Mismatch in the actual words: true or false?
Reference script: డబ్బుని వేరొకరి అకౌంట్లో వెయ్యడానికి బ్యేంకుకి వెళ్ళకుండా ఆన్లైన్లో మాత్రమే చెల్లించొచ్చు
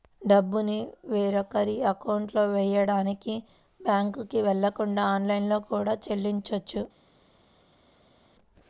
true